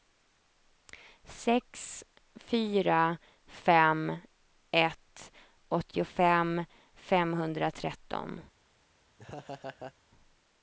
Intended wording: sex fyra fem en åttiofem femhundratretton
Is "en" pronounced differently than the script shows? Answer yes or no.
yes